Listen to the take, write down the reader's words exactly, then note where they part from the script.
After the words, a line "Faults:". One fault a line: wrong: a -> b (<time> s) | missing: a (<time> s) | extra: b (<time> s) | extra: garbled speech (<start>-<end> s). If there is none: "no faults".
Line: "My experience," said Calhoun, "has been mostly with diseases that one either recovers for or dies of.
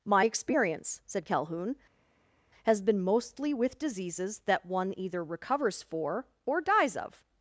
"My experience," said Calhoun, "has been mostly with diseases that one either recovers for or dies of.
Faults:
no faults